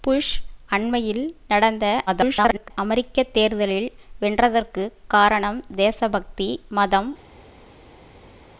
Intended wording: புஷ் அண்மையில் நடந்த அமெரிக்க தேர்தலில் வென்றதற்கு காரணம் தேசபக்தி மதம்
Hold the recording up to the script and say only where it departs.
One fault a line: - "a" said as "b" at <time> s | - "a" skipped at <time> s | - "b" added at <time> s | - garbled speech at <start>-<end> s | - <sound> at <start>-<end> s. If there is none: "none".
- garbled speech at 2.1-2.7 s